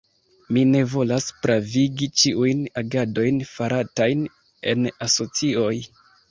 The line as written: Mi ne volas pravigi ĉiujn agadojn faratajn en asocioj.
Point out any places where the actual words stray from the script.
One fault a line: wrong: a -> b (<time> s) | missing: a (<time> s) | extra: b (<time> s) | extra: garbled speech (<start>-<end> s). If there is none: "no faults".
no faults